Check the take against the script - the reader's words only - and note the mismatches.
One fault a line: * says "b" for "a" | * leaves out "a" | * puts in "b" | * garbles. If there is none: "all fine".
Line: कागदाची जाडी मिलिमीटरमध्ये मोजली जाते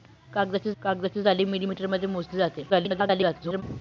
* puts in "कागदाची"
* garbles